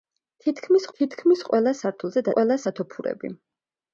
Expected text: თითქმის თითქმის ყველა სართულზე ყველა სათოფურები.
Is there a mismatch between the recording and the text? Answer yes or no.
no